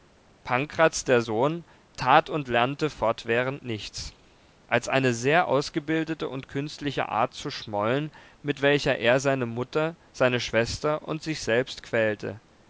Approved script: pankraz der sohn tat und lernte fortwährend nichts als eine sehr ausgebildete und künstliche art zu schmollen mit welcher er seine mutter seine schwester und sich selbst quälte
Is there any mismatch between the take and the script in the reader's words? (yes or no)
no